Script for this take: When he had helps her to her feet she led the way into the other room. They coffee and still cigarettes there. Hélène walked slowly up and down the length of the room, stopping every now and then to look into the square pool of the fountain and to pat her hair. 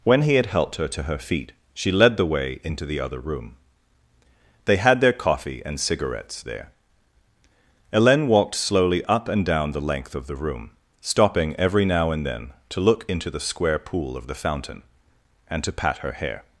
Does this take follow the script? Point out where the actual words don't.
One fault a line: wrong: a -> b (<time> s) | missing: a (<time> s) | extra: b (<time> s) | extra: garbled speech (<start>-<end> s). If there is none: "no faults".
wrong: helps -> helped (0.5 s)
extra: had their (4.8 s)
missing: still (5.8 s)